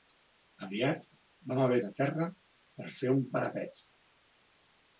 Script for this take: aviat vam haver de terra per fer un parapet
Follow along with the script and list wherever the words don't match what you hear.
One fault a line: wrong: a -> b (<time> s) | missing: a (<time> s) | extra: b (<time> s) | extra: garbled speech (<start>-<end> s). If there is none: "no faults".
no faults